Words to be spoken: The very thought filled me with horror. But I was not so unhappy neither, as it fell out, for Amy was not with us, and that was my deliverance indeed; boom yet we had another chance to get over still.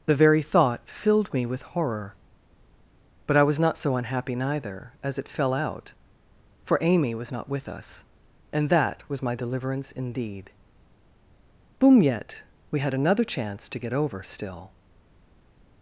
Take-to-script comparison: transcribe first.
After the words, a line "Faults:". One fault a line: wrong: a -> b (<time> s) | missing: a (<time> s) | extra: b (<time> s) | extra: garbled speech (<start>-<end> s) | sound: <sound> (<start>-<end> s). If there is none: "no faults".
The very thought filled me with horror. But I was not so unhappy neither, as it fell out, for Amy was not with us, and that was my deliverance indeed; boom yet we had another chance to get over still.
Faults:
no faults